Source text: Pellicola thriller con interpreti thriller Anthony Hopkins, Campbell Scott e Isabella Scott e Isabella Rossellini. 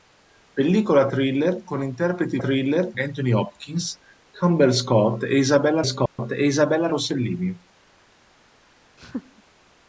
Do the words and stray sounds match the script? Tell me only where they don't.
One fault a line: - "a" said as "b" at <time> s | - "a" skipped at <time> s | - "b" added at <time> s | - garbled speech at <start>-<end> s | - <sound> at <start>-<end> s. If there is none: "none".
- dropout at 6.1-6.2 s
- laugh at 9.0-9.4 s